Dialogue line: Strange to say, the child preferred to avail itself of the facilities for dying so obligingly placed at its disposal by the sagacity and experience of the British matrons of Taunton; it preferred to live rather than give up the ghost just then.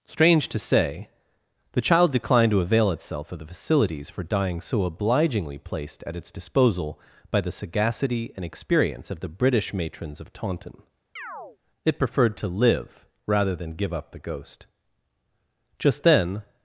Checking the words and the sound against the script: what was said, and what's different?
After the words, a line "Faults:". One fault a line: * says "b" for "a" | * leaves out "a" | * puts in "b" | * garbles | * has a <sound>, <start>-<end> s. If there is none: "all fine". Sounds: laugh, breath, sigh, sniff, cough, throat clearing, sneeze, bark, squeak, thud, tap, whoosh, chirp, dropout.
Strange to say, the child declined to avail itself of the facilities for dying so obligingly placed at its disposal by the sagacity and experience of the British matrons of Taunton; it preferred to live rather than give up the ghost just then.
Faults:
* says "declined" for "preferred"
* has a chirp, 11.2-11.6 s